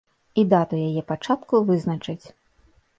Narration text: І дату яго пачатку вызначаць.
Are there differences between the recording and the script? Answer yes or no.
yes